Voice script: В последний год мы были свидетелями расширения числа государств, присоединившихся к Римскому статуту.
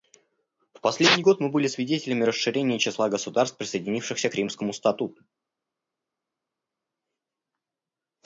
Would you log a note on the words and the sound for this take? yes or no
no